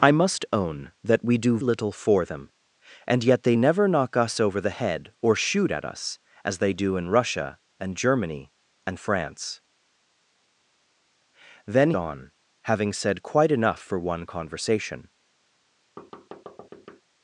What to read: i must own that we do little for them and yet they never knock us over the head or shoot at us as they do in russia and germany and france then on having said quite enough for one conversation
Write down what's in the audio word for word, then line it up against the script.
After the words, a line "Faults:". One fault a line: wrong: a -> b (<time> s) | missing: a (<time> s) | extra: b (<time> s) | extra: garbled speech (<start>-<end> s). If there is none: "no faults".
i must own that we do little for them and yet they never knock us over the head or shoot at us as they do in russia and germany and france then on having said quite enough for one conversation
Faults:
no faults